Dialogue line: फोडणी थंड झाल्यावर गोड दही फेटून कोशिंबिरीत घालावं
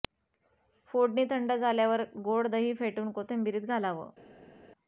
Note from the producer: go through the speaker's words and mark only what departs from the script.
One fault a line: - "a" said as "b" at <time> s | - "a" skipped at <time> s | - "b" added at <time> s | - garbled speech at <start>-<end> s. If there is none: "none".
none